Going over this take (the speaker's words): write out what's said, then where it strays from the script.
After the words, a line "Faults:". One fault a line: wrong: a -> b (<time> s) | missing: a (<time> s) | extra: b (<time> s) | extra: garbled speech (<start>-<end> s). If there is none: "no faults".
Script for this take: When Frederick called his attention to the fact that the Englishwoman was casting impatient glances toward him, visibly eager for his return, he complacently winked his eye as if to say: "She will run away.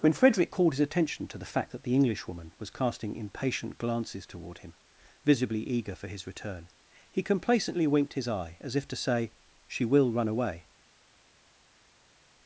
When Frederick called his attention to the fact that the Englishwoman was casting impatient glances toward him, visibly eager for his return, he complacently winked his eye as if to say: "She will run away.
Faults:
no faults